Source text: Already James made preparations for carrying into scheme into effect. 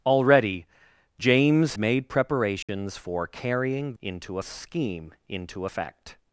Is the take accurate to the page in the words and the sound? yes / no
no